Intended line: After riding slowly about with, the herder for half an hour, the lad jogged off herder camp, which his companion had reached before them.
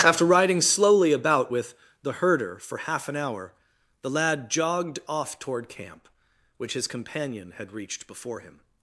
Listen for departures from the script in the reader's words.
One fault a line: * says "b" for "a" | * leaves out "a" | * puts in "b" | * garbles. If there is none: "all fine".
* says "toward" for "herder"
* says "him" for "them"